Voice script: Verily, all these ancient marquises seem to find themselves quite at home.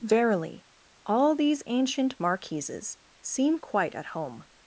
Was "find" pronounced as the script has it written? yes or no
no